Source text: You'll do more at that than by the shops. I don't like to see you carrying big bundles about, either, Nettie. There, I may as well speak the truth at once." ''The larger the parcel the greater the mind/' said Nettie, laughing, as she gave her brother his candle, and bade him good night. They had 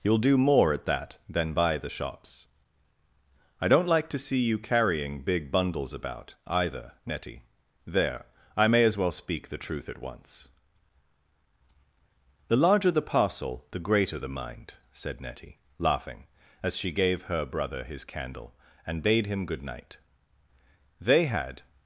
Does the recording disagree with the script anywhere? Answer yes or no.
no